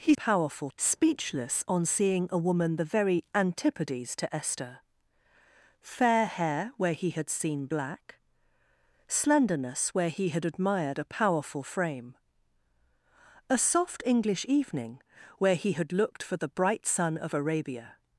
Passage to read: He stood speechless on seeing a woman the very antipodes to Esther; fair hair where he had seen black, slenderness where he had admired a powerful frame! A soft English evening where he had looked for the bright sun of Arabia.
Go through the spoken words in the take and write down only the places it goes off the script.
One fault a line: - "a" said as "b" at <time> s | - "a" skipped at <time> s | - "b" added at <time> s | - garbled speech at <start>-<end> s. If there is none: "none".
- "stood" said as "powerful" at 0.1 s